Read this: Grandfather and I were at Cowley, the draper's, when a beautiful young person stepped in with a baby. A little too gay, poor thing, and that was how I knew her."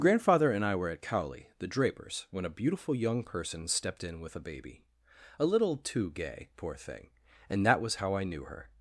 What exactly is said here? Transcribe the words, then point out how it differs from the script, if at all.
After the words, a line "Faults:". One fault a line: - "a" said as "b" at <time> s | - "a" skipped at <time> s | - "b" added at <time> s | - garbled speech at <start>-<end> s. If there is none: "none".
Grandfather and I were at Cowley, the draper's, when a beautiful young person stepped in with a baby. A little too gay, poor thing, and that was how I knew her."
Faults:
none